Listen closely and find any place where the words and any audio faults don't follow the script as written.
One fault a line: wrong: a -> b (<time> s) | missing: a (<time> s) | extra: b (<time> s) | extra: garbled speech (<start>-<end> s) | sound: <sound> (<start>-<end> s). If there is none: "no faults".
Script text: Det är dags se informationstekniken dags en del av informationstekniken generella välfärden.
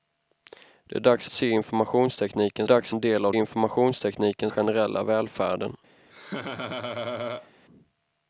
sound: laugh (6.1-7.5 s)